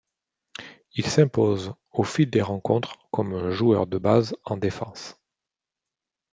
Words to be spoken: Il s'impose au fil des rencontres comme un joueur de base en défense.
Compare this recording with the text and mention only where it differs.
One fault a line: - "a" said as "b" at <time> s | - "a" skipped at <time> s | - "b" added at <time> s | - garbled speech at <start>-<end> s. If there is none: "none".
none